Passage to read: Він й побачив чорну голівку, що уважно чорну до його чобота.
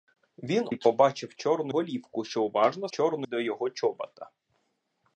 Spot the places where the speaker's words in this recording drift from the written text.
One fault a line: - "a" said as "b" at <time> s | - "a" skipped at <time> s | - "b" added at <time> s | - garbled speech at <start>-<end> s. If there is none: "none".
none